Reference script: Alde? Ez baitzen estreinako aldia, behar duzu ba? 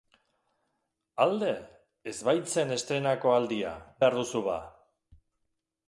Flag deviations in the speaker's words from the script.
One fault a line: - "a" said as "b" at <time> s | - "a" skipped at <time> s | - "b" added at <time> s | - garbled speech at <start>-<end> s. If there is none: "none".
none